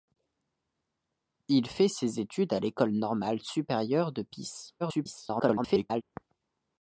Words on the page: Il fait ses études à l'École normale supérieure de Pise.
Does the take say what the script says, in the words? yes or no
no